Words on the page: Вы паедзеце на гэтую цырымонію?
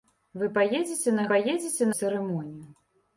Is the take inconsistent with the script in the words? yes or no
yes